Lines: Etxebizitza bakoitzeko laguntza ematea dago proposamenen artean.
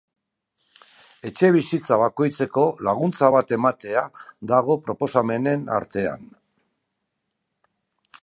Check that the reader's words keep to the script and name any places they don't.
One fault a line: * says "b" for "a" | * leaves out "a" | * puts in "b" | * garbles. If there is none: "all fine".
* puts in "bat"